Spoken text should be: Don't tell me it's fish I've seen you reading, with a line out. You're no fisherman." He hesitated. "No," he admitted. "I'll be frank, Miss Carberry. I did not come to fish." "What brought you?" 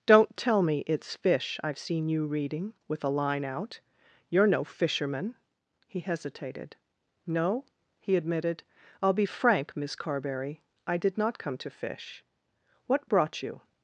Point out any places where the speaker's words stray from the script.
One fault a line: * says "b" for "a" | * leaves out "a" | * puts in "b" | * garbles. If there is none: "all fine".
all fine